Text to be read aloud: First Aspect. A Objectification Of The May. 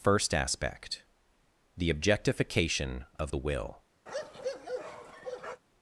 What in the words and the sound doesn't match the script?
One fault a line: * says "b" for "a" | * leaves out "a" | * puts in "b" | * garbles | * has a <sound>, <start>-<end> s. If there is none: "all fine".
* says "The" for "A"
* says "Will" for "May"
* has a bark, 4.1-5.6 s